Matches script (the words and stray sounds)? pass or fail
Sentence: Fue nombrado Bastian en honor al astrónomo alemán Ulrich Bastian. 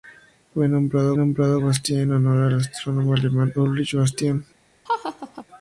fail